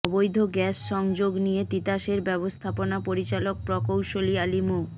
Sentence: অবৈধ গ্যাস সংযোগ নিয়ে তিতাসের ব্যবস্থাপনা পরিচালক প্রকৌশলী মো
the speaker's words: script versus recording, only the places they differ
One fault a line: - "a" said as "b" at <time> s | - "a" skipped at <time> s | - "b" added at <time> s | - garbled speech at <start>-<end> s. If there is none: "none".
- "আলী" added at 4.4 s